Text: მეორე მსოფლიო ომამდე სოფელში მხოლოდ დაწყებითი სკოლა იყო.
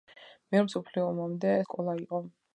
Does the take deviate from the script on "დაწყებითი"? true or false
true